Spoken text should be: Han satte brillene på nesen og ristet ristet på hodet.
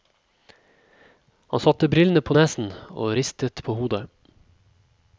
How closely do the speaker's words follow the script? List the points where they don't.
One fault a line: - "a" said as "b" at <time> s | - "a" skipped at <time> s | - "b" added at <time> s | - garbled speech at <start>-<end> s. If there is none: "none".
- "ristet" skipped at 3.6 s